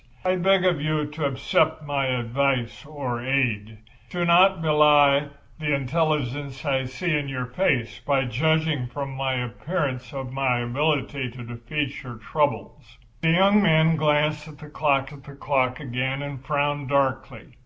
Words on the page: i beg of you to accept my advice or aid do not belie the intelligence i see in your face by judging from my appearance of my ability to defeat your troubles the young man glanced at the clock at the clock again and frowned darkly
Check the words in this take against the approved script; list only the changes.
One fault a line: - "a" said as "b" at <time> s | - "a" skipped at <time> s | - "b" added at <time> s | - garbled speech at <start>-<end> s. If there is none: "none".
none